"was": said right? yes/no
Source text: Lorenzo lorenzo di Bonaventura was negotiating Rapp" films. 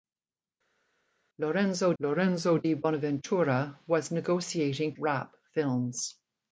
yes